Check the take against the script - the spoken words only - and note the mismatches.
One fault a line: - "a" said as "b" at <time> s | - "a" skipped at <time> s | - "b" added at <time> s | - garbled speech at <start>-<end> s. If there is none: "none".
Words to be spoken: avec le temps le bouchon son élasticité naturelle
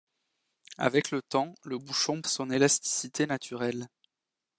none